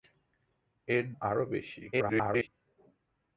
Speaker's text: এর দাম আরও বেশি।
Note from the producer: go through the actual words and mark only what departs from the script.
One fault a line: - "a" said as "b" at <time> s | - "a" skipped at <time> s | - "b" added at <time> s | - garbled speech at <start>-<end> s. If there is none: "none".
- "দাম" skipped at 1.1 s
- garbled speech at 1.9-2.5 s